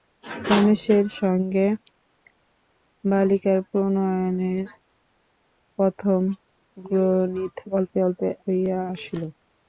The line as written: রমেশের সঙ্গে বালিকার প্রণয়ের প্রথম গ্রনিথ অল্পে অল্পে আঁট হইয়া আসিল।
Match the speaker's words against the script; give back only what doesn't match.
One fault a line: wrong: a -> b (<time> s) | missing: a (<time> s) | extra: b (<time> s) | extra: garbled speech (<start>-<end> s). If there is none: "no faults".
missing: আঁট (8.3 s)